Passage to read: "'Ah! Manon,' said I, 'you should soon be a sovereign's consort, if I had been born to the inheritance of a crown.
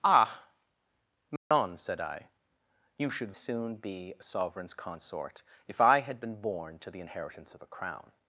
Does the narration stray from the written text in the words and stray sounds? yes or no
yes